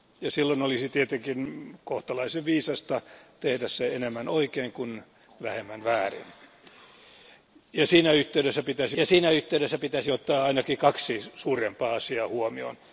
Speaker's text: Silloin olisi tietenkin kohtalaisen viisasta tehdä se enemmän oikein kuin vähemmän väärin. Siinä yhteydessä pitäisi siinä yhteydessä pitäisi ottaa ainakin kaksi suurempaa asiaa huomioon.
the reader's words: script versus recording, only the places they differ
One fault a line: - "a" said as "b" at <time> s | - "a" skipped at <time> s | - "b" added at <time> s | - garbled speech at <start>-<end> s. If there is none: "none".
none